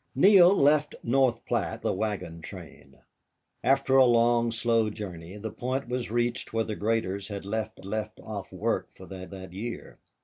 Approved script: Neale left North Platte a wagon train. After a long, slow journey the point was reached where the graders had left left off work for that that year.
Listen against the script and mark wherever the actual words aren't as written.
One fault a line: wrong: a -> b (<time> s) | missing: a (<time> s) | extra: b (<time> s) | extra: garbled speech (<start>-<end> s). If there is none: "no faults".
no faults